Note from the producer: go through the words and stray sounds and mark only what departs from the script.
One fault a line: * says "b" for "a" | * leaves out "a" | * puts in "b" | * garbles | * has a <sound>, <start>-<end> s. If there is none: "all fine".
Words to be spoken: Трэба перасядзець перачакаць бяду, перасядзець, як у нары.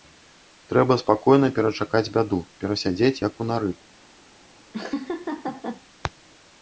* says "спакойна" for "перасядзець"
* has a laugh, 4.7-5.8 s